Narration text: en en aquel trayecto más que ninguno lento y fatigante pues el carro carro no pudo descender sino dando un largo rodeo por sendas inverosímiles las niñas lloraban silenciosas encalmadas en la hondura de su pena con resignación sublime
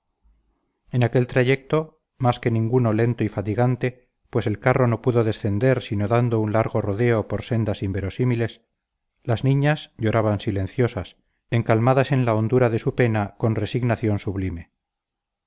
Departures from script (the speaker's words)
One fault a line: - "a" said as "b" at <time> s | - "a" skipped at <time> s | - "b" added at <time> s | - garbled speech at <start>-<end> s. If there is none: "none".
- "en" skipped at 1.0 s
- "carro" skipped at 4.9 s